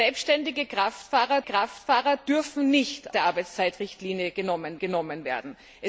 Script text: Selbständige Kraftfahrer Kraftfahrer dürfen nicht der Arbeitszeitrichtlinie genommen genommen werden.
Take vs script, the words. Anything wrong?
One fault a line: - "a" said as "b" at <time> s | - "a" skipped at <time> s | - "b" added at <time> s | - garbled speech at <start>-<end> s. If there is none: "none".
none